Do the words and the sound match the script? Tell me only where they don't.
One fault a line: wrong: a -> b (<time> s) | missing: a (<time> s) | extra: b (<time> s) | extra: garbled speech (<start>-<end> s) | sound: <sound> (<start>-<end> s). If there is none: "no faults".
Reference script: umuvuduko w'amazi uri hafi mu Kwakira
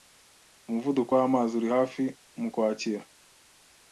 no faults